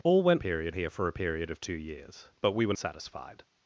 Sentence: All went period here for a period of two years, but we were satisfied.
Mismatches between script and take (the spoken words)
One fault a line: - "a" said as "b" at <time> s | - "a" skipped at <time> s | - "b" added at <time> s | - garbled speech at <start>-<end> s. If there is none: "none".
none